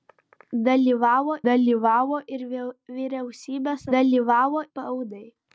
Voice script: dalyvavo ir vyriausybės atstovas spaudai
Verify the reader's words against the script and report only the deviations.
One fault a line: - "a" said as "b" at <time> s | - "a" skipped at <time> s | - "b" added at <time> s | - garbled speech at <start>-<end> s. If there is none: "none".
- "dalyvavo" added at 1.5 s
- "atstovas" said as "dalyvavo" at 3.9 s